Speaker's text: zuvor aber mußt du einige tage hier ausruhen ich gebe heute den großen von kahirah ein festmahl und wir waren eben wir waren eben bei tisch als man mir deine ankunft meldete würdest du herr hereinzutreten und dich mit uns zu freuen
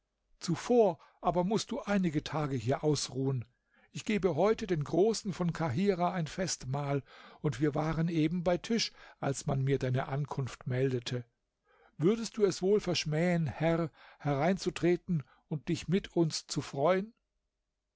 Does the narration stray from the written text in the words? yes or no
yes